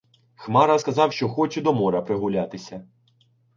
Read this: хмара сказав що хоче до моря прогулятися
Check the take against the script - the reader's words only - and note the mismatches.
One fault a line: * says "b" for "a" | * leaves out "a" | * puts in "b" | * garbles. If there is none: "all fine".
all fine